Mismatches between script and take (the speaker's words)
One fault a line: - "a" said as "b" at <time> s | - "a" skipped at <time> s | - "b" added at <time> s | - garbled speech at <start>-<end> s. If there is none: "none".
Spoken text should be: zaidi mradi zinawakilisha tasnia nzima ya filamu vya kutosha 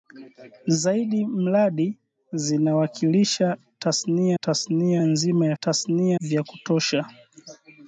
- "tasnia" added at 4.4 s
- "filamu" said as "tasnia" at 5.6 s